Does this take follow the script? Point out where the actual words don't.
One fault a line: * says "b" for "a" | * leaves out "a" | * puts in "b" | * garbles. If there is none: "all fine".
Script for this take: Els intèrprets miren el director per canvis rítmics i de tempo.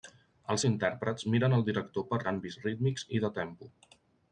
all fine